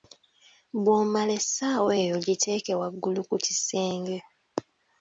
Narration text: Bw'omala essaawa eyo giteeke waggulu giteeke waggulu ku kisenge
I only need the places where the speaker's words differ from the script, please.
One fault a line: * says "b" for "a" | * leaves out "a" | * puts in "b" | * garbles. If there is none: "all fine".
* leaves out "giteeke waggulu"